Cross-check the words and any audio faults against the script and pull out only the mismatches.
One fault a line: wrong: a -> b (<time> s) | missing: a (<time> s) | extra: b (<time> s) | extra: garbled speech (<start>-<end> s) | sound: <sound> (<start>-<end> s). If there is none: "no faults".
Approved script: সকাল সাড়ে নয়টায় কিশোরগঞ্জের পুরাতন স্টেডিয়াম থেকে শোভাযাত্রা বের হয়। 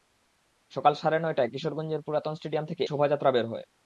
no faults